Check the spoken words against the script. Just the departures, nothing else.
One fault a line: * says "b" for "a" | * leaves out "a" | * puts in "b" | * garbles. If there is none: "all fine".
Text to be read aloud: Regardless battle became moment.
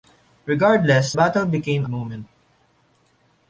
all fine